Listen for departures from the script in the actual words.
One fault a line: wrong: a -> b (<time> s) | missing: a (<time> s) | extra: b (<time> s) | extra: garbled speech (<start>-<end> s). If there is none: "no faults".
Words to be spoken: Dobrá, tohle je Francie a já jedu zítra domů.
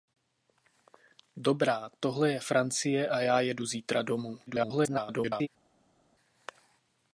extra: garbled speech (4.5-5.5 s)